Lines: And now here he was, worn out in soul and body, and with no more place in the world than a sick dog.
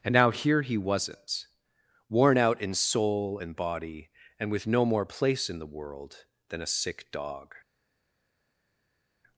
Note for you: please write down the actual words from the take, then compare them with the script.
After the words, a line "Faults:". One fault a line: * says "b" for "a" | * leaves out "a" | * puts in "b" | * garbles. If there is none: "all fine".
And now here he wasn't, worn out in soul and body, and with no more place in the world than a sick dog.
Faults:
* says "wasn't" for "was"